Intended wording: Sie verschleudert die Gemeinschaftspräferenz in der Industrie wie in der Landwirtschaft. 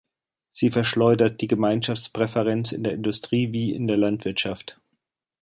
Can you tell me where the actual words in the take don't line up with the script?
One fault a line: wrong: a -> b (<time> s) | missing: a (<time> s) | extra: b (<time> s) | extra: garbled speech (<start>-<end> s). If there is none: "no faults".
no faults